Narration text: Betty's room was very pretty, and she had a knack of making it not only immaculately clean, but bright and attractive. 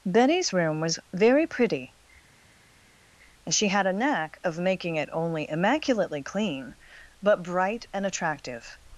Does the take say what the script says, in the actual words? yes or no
no